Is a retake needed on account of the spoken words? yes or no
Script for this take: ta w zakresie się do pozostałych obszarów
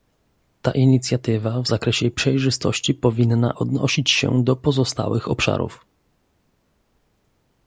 yes